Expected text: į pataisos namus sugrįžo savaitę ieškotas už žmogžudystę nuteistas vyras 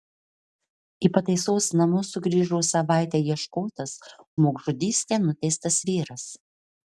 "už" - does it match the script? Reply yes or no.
no